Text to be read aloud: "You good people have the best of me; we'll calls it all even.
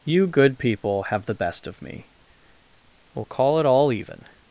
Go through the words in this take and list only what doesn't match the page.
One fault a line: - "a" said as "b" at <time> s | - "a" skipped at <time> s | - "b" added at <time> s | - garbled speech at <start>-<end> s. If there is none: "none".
- "calls" said as "call" at 3.2 s